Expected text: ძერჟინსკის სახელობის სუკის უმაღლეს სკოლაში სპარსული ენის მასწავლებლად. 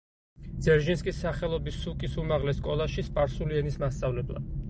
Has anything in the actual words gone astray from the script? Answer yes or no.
no